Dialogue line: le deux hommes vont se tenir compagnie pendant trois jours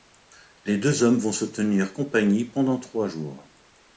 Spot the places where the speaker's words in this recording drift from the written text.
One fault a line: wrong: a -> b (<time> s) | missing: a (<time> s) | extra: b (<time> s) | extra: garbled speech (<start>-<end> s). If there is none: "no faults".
wrong: le -> les (0.7 s)